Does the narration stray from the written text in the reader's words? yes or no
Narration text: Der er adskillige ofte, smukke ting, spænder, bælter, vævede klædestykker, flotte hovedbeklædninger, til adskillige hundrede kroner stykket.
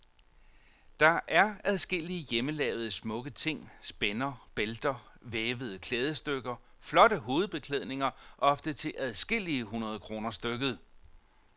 yes